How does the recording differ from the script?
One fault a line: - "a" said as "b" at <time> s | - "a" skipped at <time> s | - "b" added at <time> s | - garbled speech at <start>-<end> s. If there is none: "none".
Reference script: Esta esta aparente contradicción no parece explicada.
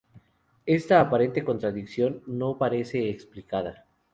- "esta" skipped at 1.0 s